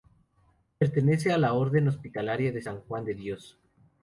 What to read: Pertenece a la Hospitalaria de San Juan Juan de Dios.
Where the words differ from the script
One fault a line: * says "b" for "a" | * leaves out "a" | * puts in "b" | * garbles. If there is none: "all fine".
* puts in "Orden"
* leaves out "Juan"